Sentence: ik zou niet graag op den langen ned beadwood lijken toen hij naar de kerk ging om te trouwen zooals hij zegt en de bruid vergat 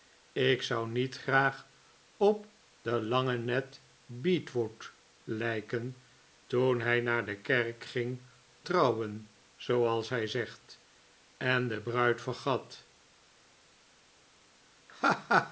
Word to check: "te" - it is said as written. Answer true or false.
false